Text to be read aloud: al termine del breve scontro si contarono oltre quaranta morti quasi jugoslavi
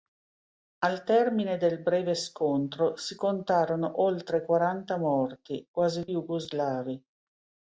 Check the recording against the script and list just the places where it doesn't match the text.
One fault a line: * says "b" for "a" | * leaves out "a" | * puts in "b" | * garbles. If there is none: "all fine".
all fine